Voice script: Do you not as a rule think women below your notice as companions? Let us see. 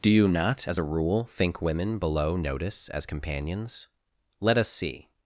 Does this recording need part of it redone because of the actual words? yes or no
yes